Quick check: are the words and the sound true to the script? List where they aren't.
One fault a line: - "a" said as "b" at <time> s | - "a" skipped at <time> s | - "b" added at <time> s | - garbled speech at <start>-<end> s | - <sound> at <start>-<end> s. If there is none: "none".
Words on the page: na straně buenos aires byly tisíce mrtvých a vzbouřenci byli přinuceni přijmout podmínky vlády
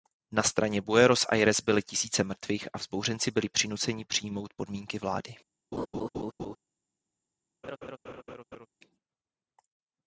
- laugh at 5.7-6.6 s
- laugh at 7.6-8.7 s